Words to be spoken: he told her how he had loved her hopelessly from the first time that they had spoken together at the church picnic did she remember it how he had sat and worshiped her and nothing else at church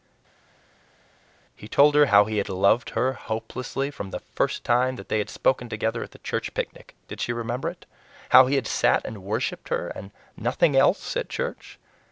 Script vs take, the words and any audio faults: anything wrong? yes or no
no